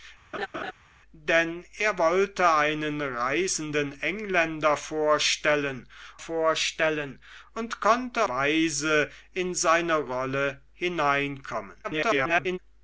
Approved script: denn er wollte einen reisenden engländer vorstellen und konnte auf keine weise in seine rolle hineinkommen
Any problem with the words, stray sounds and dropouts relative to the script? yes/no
yes